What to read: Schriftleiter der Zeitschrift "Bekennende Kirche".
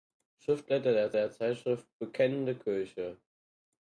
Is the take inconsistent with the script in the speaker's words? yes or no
yes